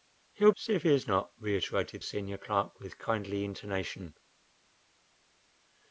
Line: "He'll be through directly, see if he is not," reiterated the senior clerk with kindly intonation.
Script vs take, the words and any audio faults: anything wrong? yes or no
yes